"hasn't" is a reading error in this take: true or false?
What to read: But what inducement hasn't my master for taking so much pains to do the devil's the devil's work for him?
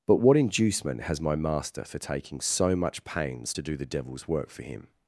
true